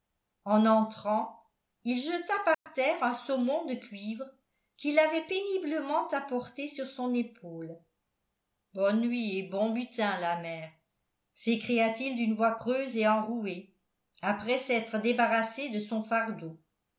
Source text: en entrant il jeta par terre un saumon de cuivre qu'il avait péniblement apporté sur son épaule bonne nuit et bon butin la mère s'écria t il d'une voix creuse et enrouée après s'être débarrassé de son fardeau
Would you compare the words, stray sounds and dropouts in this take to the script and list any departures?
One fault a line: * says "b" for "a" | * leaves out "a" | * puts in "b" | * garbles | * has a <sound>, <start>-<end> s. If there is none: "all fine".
* has a dropout, 2.5-2.7 s